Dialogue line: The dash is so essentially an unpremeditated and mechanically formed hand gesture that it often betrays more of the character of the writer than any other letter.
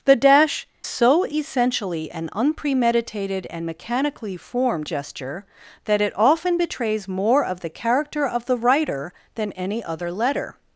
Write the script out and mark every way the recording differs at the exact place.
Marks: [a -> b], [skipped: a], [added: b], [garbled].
The dash [skipped: is] so essentially an unpremeditated and mechanically formed [skipped: hand] gesture that it often betrays more of the character of the writer than any other letter.